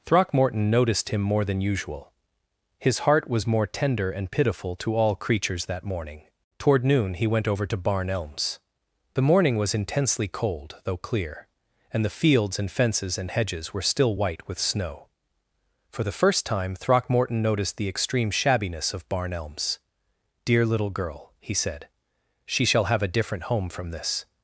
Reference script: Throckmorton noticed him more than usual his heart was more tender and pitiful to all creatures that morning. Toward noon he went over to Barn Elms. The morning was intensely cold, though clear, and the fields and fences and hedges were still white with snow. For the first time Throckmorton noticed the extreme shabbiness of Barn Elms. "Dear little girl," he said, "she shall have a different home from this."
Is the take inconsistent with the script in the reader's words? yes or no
no